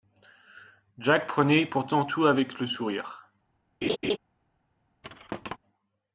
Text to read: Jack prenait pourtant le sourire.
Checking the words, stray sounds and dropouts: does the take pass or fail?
fail